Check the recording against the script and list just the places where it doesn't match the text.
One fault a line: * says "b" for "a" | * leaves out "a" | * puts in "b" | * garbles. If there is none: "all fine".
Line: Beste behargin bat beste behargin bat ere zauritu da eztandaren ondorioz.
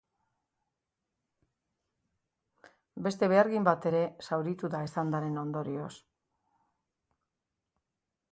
* leaves out "beste behargin bat"